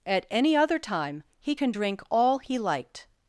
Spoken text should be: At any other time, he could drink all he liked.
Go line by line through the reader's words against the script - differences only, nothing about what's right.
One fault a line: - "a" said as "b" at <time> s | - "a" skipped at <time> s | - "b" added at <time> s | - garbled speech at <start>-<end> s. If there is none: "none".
- "could" said as "can" at 1.5 s